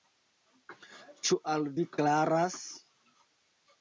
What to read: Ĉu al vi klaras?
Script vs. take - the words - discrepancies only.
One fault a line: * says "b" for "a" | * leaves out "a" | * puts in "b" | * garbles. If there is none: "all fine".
all fine